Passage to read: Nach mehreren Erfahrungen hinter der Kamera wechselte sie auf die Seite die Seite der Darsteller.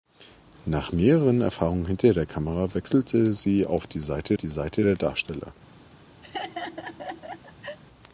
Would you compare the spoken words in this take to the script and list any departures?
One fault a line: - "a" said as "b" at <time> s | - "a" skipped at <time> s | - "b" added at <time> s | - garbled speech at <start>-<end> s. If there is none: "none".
none